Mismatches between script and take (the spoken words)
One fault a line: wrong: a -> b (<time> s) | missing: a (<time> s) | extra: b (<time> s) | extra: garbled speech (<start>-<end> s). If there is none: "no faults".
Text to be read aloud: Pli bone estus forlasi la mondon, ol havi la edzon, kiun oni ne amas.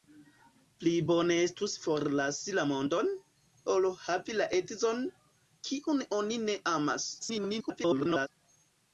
extra: garbled speech (7.2-8.3 s)